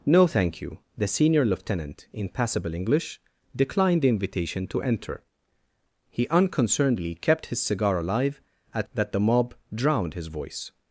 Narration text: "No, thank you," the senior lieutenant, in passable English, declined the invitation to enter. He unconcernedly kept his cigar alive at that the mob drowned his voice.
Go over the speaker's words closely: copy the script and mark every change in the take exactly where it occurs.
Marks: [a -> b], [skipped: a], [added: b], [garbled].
"No, thank you," the senior lieutenant, in passable English, declined the invitation to enter. He unconcernedly kept his cigar alive at that the mob drowned his voice.